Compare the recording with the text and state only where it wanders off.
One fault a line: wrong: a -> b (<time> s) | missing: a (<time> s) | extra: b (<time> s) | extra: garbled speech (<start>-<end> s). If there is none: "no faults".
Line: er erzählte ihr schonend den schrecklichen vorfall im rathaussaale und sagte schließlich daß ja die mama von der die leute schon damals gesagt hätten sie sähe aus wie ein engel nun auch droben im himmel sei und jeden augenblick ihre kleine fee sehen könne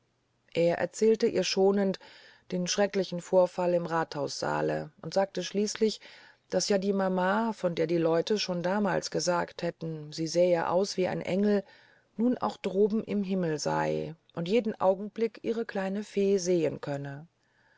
no faults